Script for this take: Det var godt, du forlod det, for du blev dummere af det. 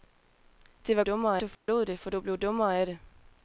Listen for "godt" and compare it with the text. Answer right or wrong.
wrong